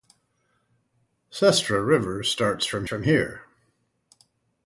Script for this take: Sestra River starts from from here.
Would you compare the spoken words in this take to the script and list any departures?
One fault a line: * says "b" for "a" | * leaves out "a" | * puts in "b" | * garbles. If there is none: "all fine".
all fine